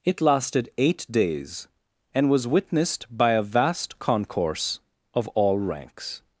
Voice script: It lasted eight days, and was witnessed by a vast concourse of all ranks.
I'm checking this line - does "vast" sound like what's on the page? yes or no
yes